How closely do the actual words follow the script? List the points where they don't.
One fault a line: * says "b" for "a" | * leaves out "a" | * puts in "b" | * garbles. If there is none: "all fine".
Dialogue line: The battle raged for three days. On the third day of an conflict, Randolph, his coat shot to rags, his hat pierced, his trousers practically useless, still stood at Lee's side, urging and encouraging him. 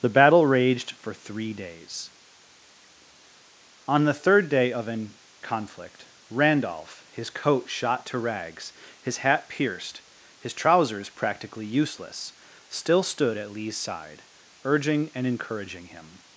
all fine